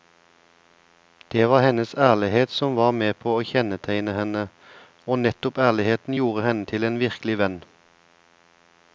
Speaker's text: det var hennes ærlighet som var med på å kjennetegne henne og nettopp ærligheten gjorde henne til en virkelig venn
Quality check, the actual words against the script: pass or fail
pass